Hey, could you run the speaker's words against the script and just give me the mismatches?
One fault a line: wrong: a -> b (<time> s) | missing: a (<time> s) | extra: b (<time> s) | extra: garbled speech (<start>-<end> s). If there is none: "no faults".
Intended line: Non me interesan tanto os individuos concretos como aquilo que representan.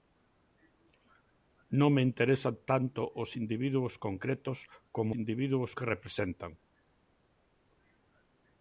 wrong: aquilo -> individuos (5.2 s)